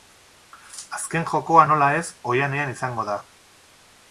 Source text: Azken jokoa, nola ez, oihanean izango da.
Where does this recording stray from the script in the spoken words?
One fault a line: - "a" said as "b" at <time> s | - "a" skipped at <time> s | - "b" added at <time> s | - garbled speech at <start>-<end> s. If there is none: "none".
none